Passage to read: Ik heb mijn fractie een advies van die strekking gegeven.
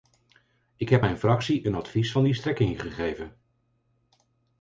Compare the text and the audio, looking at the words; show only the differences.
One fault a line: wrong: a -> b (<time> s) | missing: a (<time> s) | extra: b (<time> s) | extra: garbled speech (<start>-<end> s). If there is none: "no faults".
no faults